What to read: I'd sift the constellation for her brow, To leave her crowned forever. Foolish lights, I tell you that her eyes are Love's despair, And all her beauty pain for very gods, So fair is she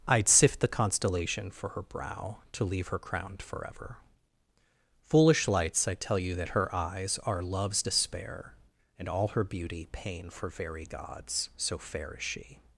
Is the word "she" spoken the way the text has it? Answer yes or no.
yes